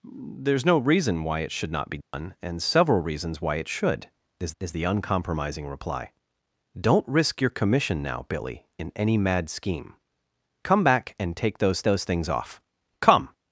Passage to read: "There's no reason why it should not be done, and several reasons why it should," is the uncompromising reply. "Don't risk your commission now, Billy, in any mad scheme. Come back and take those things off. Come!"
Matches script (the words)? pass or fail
fail